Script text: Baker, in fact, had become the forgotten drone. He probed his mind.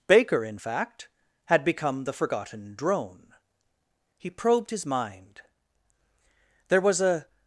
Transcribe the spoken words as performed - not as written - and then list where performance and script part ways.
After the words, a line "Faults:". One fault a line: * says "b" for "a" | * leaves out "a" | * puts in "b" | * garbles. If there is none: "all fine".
Baker, in fact, had become the forgotten drone. He probed his mind. There was a
Faults:
* puts in "There was a"